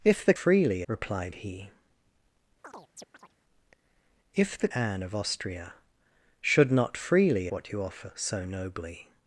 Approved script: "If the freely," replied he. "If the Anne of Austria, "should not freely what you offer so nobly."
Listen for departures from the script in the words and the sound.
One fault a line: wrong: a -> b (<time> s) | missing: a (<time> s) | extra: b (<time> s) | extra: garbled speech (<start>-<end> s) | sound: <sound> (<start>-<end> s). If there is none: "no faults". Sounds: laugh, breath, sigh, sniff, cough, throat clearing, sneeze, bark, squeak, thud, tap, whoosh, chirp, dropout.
sound: chirp (2.6-3.3 s)